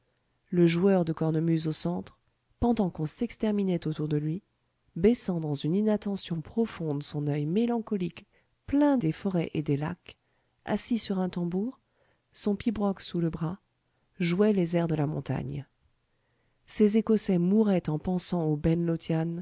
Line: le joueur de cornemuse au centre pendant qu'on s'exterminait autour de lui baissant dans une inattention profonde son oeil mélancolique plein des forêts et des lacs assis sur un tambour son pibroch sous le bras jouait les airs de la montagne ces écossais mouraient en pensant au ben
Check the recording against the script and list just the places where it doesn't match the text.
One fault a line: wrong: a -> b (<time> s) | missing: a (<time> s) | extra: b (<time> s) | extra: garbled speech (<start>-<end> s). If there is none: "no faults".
no faults